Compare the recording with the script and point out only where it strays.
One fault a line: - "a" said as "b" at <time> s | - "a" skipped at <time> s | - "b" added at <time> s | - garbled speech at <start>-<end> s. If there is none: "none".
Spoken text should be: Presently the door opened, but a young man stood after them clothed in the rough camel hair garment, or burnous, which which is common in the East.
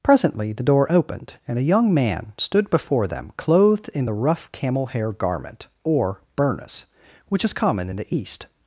- "but" said as "and" at 1.5 s
- "after" said as "before" at 2.7 s
- "which" skipped at 7.4 s